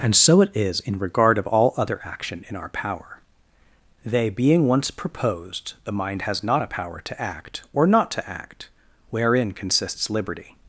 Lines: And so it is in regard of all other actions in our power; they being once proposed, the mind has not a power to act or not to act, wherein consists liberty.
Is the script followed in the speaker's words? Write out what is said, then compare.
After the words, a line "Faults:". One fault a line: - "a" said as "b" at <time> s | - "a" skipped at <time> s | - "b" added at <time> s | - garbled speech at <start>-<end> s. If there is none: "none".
And so it is in regard of all other action in our power; they being once proposed, the mind has not a power to act or not to act, wherein consists liberty.
Faults:
- "actions" said as "action" at 2.0 s